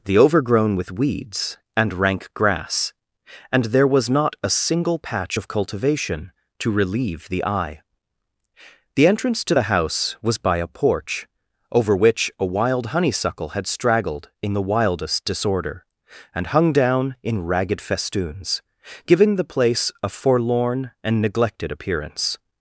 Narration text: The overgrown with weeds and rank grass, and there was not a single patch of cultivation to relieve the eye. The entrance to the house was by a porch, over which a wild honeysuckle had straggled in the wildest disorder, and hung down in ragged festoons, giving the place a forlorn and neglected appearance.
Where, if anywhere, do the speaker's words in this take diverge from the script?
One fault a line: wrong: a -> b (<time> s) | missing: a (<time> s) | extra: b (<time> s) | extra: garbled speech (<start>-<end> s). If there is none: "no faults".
no faults